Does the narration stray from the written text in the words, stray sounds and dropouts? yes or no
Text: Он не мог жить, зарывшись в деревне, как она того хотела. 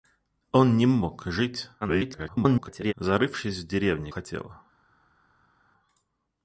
yes